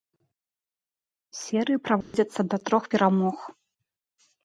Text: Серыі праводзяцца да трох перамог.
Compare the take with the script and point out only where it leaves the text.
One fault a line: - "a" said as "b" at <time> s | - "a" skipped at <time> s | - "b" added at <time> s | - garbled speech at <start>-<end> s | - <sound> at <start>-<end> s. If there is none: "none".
- dropout at 2.0-2.1 s